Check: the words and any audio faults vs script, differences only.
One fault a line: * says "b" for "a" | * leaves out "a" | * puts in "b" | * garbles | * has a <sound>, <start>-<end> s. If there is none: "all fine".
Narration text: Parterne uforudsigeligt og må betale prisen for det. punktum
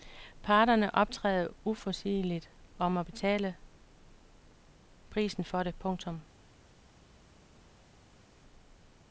* puts in "optræder"